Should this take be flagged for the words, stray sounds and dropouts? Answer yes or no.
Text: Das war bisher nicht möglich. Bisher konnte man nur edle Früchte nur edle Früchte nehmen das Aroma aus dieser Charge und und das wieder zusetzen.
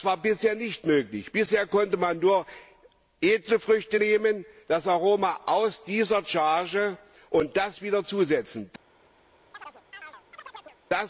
yes